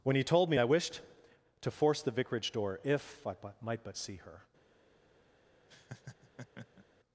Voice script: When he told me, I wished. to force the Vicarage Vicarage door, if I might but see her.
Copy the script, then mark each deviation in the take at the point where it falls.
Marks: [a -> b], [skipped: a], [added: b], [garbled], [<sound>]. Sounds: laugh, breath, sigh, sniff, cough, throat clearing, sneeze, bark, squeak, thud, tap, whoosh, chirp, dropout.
When he told me, I wished. to force the Vicarage [skipped: Vicarage] door, if I might but see her. [laugh]